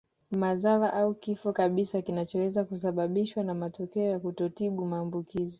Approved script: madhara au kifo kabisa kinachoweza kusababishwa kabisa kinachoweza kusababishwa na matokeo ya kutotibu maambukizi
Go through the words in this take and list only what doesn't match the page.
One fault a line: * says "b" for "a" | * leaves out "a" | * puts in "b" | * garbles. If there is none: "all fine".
* leaves out "kabisa kinachoweza kusababishwa"